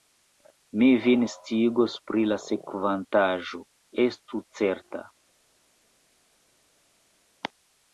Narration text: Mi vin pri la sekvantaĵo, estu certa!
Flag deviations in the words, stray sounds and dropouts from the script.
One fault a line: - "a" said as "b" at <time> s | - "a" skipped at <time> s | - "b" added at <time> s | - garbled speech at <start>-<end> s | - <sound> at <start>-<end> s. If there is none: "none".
- "sciigos" added at 1.3 s